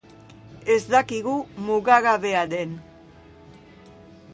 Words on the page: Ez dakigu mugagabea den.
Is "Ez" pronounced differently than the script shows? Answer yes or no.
no